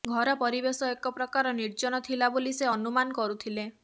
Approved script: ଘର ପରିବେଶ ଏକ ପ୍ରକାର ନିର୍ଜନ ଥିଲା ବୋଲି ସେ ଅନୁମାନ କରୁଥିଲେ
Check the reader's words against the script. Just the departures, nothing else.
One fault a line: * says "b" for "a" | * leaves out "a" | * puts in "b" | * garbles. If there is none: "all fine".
all fine